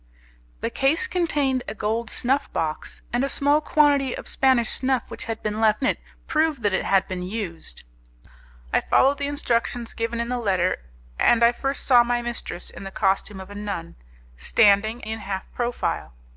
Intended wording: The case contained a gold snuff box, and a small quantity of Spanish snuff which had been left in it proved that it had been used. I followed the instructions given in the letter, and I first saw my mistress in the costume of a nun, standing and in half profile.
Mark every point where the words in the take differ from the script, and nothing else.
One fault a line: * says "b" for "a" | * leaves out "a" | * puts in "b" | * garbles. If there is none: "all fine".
* leaves out "in"
* leaves out "and"